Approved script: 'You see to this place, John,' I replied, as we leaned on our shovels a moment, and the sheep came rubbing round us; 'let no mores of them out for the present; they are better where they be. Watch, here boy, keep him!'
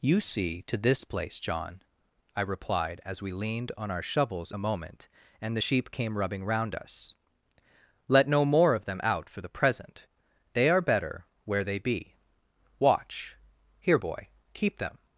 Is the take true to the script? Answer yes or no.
no